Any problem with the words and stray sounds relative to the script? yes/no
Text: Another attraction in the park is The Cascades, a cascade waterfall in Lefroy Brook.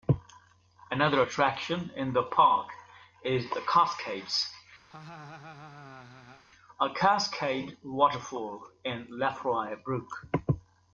yes